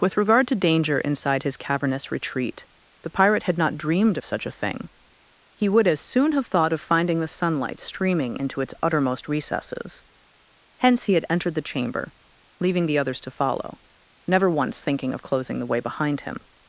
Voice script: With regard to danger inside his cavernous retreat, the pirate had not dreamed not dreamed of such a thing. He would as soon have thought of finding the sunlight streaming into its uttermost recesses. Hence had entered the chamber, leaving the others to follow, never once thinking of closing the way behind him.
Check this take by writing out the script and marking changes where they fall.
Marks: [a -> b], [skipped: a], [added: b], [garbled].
With regard to danger inside his cavernous retreat, the pirate had not dreamed [skipped: not dreamed] of such a thing. He would as soon have thought of finding the sunlight streaming into its uttermost recesses. Hence [added: he] had entered the chamber, leaving the others to follow, never once thinking of closing the way behind him.